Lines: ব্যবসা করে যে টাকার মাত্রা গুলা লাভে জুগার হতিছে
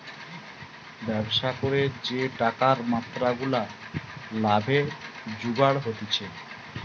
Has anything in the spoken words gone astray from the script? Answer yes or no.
no